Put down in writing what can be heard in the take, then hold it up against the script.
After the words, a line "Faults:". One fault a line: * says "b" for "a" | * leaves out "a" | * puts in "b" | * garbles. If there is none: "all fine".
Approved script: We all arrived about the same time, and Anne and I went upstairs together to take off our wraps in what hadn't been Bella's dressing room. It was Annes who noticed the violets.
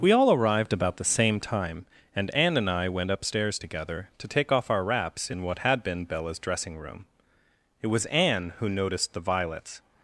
We all arrived about the same time, and Anne and I went upstairs together to take off our wraps in what had been Bella's dressing room. It was Anne who noticed the violets.
Faults:
* says "had" for "hadn't"
* says "Anne" for "Annes"